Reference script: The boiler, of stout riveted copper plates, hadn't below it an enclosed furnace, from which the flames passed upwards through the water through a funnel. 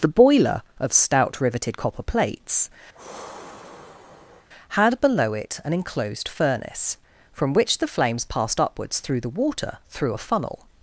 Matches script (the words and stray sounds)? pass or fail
fail